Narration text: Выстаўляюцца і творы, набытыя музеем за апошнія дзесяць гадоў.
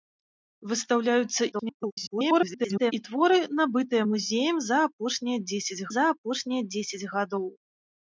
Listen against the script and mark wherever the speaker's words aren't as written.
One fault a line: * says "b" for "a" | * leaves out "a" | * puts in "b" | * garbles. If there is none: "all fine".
* garbles
* puts in "за апошнія дзесяць"